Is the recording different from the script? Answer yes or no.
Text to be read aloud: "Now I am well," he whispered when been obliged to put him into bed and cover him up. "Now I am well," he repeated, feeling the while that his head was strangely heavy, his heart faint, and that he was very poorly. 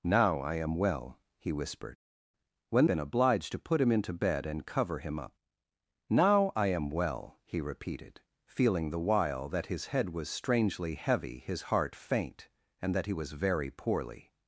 no